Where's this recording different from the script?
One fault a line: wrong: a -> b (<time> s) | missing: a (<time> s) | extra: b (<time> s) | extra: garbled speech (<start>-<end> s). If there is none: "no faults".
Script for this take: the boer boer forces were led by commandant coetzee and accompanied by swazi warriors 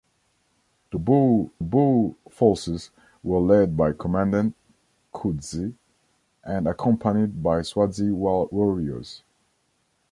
no faults